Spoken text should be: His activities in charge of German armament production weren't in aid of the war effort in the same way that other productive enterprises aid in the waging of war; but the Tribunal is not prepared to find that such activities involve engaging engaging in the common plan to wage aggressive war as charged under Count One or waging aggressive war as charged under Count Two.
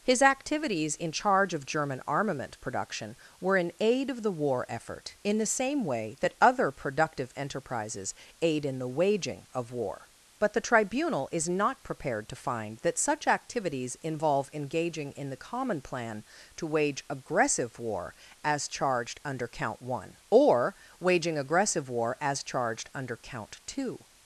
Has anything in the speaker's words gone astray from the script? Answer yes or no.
yes